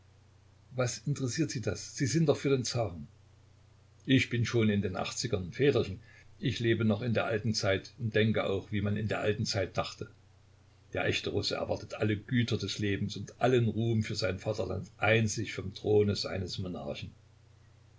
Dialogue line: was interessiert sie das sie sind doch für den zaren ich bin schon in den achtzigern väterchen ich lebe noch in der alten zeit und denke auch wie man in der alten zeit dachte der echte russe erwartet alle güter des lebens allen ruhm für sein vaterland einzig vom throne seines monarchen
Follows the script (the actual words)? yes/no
no